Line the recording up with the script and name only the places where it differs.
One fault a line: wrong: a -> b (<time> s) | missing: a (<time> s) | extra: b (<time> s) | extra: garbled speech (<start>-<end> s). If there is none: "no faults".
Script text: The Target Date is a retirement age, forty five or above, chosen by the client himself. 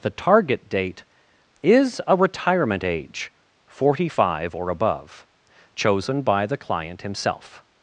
no faults